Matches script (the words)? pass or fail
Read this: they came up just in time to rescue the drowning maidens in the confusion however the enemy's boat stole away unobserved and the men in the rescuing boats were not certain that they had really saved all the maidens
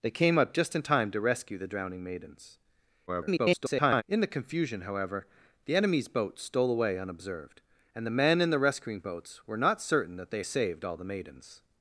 fail